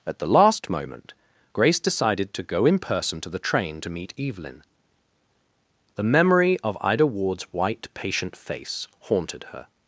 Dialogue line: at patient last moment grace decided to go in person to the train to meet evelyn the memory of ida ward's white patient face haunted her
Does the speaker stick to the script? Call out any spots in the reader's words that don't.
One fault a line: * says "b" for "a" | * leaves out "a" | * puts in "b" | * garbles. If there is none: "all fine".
* says "the" for "patient"